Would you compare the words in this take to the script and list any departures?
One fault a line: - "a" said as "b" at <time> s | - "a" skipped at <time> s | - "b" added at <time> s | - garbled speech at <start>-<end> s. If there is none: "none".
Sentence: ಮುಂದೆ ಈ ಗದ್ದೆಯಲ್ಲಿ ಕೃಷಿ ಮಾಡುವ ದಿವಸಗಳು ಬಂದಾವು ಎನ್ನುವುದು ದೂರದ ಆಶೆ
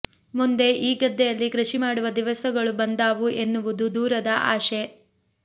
none